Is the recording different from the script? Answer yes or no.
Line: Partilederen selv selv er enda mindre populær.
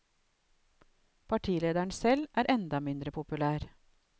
yes